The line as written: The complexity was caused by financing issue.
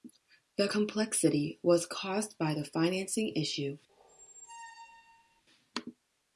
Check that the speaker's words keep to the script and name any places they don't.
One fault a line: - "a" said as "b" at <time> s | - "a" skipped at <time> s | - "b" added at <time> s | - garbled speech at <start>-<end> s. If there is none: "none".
- "the" added at 2.5 s